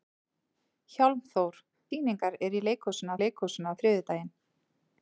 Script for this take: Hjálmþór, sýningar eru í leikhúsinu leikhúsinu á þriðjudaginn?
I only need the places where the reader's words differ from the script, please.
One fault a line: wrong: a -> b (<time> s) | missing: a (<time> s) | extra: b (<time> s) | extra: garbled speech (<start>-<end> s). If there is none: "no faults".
no faults